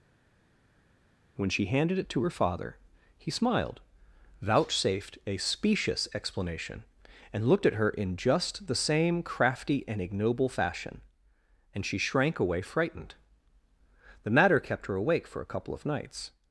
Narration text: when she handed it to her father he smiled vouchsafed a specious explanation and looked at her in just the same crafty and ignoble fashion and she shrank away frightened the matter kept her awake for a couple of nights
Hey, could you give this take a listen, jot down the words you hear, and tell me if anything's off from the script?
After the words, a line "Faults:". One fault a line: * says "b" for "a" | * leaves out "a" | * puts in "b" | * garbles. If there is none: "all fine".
when she handed it to her father he smiled vouchsafed a specious explanation and looked at her in just the same crafty and ignoble fashion and she shrank away frightened the matter kept her awake for a couple of nights
Faults:
all fine